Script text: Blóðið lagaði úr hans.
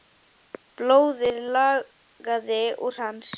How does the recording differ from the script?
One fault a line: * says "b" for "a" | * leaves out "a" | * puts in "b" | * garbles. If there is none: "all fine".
all fine